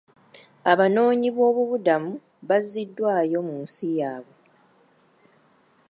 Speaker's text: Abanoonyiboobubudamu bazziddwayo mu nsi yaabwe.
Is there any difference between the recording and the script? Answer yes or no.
no